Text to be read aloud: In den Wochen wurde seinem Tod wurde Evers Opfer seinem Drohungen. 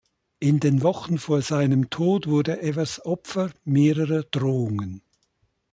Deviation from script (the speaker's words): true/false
true